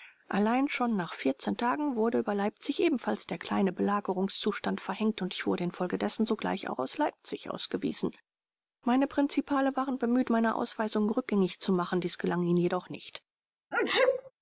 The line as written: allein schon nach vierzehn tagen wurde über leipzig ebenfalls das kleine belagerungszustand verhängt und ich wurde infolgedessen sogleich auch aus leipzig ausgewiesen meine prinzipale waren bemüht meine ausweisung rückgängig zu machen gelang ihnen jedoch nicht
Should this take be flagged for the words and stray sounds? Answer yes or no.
yes